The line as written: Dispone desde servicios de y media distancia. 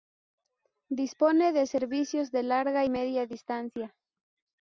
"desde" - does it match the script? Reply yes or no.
no